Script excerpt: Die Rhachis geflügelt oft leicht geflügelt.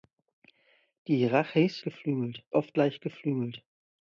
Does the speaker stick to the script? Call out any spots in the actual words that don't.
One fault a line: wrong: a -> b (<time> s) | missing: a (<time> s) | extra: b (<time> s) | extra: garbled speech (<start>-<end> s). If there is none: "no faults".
no faults